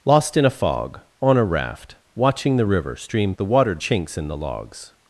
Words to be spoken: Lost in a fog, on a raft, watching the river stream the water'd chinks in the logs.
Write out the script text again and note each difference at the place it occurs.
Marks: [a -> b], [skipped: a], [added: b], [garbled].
Lost in a fog, on a raft, watching the river stream the water'd chinks in the logs.